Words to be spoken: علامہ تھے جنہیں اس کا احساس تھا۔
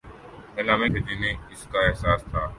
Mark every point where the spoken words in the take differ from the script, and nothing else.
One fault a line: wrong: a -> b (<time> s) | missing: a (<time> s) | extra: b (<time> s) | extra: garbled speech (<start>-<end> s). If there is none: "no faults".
no faults